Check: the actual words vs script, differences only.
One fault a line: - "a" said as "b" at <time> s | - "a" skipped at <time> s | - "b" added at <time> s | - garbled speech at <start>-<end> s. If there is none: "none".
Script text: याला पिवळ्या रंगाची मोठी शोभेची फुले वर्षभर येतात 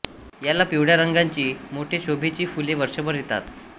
none